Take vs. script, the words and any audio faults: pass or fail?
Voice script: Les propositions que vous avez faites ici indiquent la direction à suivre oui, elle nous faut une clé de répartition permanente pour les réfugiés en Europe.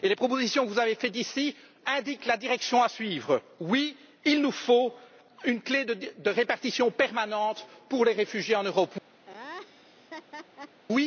fail